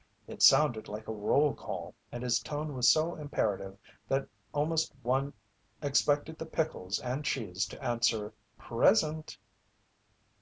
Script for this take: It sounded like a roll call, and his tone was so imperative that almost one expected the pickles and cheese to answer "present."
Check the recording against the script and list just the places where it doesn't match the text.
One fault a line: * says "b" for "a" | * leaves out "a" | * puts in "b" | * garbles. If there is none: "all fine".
all fine